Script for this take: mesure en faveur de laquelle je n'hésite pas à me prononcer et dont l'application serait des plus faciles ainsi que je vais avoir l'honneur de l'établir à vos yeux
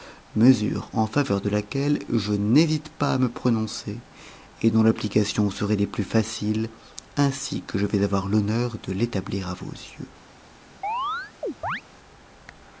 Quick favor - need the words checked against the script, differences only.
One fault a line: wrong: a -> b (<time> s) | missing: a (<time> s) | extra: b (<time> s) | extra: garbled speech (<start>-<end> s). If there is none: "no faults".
no faults